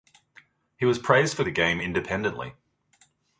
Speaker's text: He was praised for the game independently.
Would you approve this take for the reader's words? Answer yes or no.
yes